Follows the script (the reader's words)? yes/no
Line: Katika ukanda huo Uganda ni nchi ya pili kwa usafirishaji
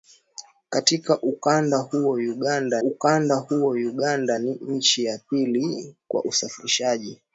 no